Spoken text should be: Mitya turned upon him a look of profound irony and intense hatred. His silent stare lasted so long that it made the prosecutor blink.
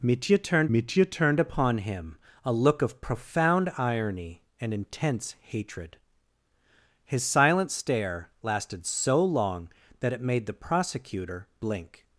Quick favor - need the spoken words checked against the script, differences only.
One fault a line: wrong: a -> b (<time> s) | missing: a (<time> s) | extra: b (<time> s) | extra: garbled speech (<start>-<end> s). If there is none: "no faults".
extra: mitya turned (0.7 s)